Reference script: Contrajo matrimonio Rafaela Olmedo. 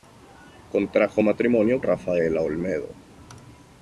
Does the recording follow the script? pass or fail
pass